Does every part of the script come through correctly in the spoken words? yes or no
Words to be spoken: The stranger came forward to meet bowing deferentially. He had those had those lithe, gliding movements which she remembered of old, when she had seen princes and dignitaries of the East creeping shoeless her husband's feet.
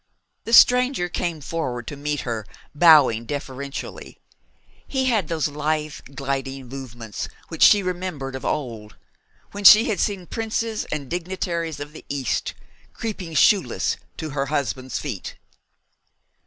no